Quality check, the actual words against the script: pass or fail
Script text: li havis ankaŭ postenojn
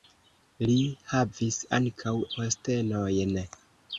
pass